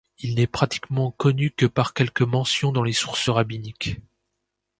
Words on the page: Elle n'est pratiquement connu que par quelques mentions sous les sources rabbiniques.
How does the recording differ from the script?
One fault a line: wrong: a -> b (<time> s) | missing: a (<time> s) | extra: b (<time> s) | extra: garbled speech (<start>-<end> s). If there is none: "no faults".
wrong: Elle -> Il (0.2 s)
wrong: sous -> dans (2.7 s)